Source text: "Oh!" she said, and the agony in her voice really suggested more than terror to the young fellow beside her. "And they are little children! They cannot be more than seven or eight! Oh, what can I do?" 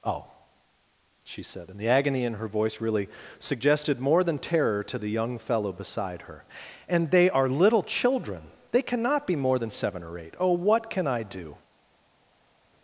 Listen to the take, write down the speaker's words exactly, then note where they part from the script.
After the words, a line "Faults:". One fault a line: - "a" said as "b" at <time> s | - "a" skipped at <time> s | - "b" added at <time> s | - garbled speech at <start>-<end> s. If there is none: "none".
"Oh!" she said, and the agony in her voice really suggested more than terror to the young fellow beside her. "And they are little children! They cannot be more than seven or eight! Oh, what can I do?"
Faults:
none